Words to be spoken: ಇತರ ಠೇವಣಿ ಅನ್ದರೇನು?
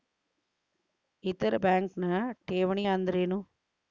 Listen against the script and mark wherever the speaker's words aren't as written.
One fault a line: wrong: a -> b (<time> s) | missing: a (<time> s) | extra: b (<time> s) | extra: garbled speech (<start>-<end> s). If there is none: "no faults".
extra: ಬ್ಯಾಂಕ್ನ (1.5 s)